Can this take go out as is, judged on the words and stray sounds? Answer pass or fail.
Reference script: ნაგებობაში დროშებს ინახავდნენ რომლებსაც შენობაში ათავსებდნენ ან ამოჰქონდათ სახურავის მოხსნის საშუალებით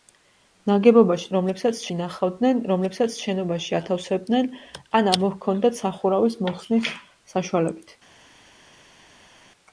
fail